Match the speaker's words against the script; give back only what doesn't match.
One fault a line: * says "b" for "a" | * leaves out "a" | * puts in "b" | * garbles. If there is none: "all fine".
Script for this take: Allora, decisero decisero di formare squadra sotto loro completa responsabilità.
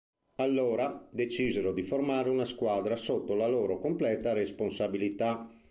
* leaves out "decisero"
* puts in "una"
* puts in "la"